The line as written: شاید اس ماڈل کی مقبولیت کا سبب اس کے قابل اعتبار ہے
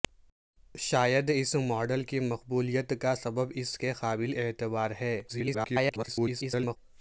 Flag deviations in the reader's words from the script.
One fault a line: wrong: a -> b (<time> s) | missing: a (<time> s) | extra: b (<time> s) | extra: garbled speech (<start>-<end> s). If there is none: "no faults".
extra: garbled speech (5.3-6.8 s)